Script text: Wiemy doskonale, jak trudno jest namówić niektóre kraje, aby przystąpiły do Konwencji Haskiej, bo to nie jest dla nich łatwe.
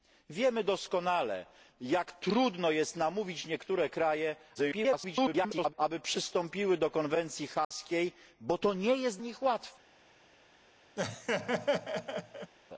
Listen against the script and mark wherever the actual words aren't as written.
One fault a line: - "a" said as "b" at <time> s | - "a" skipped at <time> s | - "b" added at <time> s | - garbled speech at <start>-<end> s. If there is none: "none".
- garbled speech at 4.5-5.7 s
- "dla" skipped at 9.2 s